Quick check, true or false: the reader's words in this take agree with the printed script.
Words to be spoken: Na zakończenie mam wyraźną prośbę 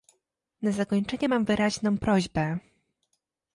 true